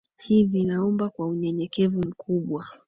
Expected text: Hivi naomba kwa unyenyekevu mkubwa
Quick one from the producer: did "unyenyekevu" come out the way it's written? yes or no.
yes